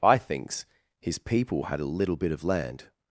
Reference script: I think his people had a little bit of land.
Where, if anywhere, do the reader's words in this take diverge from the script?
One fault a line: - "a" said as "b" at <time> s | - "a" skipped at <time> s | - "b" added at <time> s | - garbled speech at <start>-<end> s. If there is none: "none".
- "think" said as "thinks" at 0.2 s